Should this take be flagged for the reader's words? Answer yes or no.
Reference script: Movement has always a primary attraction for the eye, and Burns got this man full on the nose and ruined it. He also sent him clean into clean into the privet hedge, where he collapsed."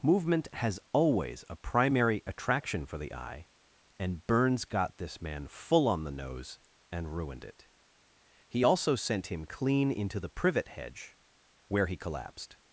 yes